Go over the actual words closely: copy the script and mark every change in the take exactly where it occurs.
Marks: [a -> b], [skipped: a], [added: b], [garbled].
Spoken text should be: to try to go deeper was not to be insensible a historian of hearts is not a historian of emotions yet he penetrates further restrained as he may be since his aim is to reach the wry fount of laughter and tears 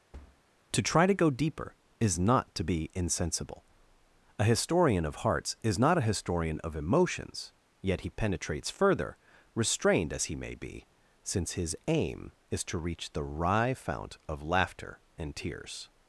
to try to go deeper [was -> is] not to be insensible a historian of hearts is not a historian of emotions yet he penetrates further restrained as he may be since his aim is to reach the wry fount of laughter and tears